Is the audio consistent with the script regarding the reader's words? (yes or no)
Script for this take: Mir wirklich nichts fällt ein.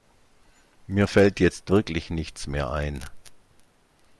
no